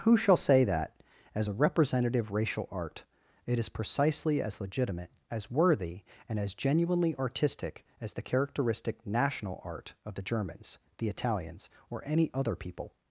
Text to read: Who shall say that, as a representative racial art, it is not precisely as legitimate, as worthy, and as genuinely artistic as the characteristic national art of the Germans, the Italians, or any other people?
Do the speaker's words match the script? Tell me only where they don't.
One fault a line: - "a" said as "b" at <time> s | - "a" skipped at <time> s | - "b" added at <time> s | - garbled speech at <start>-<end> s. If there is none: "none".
- "not" skipped at 3.7 s